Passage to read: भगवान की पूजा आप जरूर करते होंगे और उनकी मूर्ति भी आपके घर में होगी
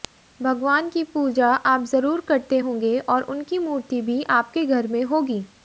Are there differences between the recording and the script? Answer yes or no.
no